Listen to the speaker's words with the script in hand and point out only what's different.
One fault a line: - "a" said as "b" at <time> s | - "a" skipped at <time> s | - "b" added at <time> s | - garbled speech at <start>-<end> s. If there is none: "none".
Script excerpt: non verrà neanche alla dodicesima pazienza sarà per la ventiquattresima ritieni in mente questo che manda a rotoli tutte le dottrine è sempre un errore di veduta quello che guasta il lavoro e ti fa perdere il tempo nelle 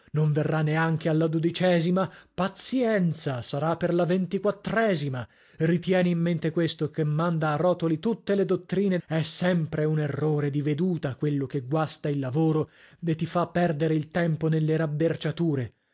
none